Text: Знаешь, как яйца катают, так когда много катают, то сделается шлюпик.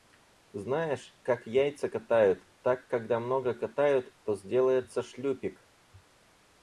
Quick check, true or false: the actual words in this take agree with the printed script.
true